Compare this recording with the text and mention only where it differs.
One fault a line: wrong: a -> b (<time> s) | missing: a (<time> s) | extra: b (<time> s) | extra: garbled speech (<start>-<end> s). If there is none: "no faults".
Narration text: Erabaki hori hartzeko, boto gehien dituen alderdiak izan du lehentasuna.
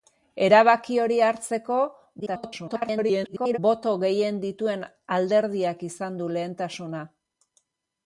extra: garbled speech (2.2-3.6 s)